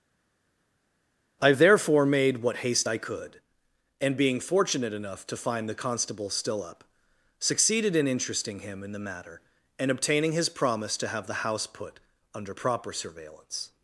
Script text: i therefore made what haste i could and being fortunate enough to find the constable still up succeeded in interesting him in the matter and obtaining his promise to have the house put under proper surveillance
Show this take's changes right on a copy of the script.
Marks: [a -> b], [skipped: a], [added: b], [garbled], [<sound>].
i therefore made what haste i could and being fortunate enough to find the constable still up succeeded in interesting him in the matter and obtaining his promise to have the house put under proper surveillance